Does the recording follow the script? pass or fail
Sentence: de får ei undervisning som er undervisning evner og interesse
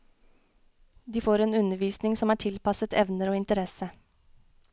fail